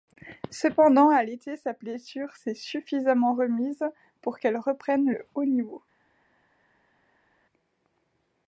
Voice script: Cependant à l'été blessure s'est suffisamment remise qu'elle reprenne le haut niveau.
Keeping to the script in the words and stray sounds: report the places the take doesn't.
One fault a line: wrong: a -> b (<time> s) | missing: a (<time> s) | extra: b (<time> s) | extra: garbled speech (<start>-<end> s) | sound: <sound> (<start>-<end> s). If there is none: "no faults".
extra: sa (1.6 s)
extra: pour (4.2 s)